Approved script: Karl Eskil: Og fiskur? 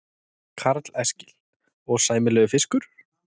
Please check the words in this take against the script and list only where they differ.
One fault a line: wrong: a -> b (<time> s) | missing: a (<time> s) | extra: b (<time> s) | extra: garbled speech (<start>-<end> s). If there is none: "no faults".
extra: sæmilegur (2.0 s)